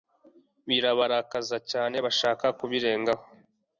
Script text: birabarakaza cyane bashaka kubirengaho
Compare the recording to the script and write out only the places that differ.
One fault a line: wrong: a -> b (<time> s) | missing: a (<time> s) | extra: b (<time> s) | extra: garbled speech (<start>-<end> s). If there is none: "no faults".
no faults